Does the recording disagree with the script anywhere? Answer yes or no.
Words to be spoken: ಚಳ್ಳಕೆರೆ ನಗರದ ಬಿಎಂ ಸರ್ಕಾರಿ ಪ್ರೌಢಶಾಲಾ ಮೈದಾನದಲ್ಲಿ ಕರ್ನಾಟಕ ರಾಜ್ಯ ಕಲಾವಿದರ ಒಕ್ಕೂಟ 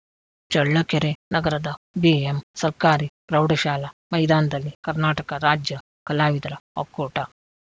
no